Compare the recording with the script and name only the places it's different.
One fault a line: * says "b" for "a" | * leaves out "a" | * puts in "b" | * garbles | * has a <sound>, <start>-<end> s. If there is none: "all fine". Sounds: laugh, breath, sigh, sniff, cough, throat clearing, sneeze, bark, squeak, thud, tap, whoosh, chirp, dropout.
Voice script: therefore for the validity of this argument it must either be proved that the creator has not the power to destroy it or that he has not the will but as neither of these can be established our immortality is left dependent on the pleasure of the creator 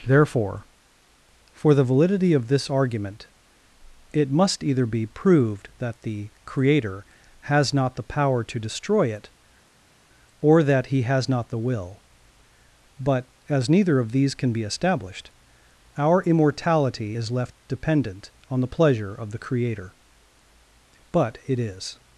* puts in "but it is"